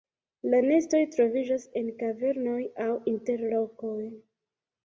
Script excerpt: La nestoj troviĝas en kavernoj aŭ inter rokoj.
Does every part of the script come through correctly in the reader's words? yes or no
yes